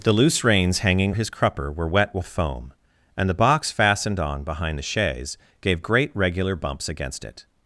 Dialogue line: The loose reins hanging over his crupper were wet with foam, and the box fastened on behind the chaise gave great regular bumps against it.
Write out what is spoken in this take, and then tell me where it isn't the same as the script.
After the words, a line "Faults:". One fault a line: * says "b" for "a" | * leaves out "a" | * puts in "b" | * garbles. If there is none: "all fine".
The loose reins hanging his crupper were wet with foam, and the box fastened on behind the chaise gave great regular bumps against it.
Faults:
* leaves out "over"